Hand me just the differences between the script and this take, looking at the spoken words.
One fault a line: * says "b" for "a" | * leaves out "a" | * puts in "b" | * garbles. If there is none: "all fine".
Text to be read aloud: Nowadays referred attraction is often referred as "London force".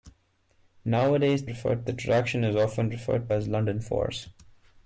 all fine